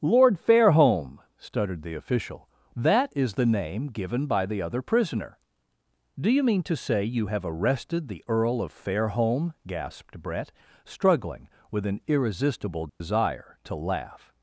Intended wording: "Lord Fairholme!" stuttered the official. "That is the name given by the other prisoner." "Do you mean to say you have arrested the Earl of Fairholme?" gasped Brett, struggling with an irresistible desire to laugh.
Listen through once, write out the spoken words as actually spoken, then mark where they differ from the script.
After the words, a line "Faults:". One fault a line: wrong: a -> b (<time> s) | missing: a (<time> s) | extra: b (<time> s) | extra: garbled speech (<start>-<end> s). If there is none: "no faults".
"Lord Fairholme!" stuttered the official. "That is the name given by the other prisoner." "Do you mean to say you have arrested the Earl of Fairholme?" gasped Brett, struggling with an irresistible desire to laugh.
Faults:
no faults